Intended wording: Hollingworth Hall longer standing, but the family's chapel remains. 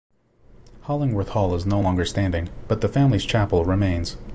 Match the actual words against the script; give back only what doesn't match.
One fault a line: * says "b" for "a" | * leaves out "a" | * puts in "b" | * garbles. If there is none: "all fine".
* puts in "is no"